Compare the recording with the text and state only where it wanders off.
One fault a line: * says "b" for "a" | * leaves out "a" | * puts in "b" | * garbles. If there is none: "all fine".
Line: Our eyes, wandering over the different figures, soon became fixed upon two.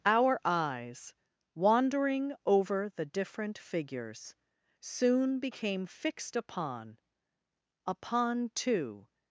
* puts in "upon"